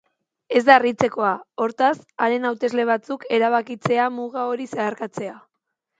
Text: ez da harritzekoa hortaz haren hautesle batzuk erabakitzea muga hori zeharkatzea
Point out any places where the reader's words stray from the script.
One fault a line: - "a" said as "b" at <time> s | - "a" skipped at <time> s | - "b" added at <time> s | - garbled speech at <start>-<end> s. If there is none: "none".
none